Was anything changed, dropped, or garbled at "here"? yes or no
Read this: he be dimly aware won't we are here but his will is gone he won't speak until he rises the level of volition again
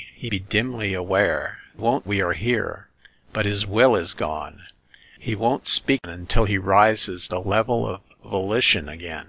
no